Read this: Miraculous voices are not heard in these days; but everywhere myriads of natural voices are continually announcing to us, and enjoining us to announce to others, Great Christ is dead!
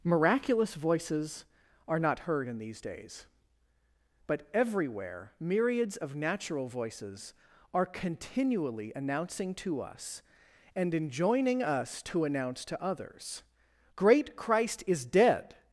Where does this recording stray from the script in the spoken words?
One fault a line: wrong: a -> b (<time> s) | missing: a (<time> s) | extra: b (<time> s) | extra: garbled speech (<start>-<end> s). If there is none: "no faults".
no faults